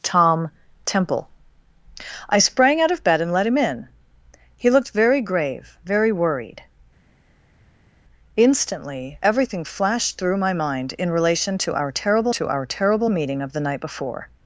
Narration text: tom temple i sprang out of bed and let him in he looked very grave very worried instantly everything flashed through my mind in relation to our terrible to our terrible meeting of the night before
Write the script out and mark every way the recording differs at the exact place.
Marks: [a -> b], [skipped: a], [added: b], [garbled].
tom temple i sprang out of bed and let him in he looked very grave very worried instantly everything flashed through my mind in relation to our terrible to our terrible meeting of the night before